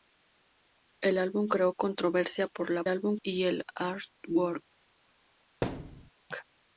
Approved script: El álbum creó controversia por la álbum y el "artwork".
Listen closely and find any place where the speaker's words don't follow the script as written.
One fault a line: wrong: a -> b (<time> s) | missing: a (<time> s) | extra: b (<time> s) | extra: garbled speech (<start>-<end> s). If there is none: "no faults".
no faults